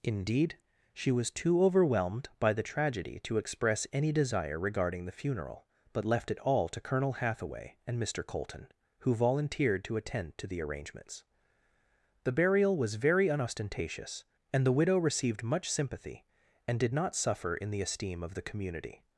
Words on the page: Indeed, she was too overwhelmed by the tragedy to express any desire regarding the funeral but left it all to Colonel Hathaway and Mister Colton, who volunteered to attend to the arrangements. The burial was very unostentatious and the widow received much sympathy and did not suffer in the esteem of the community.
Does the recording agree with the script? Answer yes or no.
yes